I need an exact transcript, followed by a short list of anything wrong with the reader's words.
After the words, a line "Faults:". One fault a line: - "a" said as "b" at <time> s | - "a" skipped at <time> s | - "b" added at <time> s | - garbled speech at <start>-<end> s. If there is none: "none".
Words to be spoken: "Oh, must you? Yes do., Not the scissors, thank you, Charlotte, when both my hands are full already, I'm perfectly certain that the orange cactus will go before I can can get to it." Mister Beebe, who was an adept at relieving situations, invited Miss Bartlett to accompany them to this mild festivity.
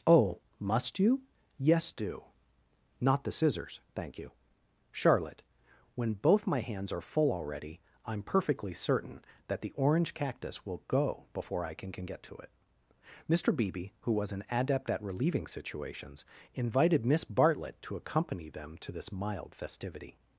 "Oh, must you? Yes do., Not the scissors, thank you, Charlotte, when both my hands are full already, I'm perfectly certain that the orange cactus will go before I can can get to it." Mister Beebe, who was an adept at relieving situations, invited Miss Bartlett to accompany them to this mild festivity.
Faults:
none